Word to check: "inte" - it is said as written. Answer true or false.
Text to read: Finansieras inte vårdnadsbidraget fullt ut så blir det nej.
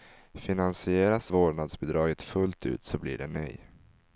false